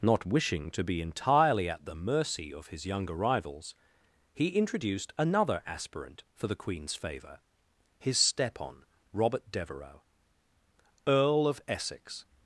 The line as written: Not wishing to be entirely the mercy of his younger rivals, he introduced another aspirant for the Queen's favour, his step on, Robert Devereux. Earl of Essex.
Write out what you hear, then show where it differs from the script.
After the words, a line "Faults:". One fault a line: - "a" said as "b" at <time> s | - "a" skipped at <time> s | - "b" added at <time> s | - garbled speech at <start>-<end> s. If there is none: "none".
Not wishing to be entirely at the mercy of his younger rivals, he introduced another aspirant for the Queen's favour, his step on, Robert Devereux. Earl of Essex.
Faults:
- "at" added at 1.7 s